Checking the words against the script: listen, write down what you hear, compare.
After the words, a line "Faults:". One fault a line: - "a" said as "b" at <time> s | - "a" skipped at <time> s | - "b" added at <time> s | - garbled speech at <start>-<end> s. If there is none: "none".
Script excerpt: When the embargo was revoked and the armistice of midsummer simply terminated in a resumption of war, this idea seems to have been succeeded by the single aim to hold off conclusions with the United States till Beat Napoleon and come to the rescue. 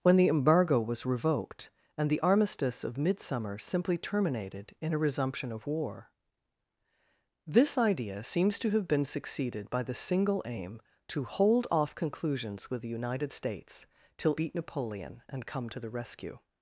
When the embargo was revoked and the armistice of midsummer simply terminated in a resumption of war, this idea seems to have been succeeded by the single aim to hold off conclusions with the United States till Beat Napoleon and come to the rescue.
Faults:
none